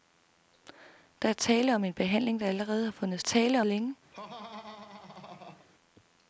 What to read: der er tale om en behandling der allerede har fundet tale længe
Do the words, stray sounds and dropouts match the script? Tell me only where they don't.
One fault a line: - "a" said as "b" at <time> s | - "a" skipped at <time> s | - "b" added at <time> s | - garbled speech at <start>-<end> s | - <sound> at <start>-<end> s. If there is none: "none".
- laugh at 4.1-5.7 s